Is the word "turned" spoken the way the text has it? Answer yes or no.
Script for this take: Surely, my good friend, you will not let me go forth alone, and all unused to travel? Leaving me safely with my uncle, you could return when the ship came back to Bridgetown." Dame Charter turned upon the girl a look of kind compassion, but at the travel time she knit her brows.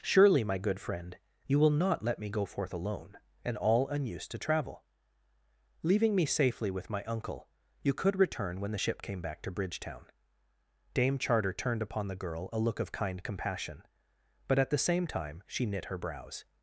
yes